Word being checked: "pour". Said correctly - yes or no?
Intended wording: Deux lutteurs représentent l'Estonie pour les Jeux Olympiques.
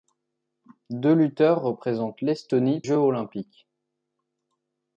no